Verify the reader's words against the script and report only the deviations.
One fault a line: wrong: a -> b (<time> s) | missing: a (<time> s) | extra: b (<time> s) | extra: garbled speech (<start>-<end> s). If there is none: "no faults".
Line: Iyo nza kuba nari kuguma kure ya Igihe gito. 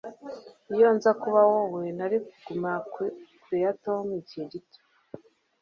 extra: wowe (1.5 s)
extra: Tom (3.8 s)